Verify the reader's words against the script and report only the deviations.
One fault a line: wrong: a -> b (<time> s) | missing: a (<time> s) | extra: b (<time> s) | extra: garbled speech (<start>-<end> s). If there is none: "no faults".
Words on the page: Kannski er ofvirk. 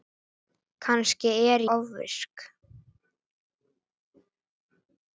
no faults